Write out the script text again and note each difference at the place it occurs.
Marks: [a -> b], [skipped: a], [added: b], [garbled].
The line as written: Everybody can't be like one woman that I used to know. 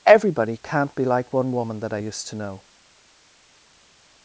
Everybody can't be like one woman that I used to know.